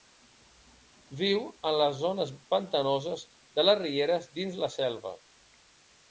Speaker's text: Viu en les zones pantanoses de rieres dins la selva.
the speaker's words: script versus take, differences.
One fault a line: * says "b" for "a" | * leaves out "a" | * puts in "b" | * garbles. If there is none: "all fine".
* puts in "les"